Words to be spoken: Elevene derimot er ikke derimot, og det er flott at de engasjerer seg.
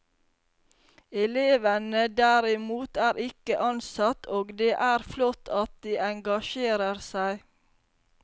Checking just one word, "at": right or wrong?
right